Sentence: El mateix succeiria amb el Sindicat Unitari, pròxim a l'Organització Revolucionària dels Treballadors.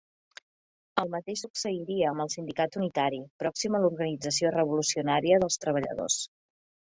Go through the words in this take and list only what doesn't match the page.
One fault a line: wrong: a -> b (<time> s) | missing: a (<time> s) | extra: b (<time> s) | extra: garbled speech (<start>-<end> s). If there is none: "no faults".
no faults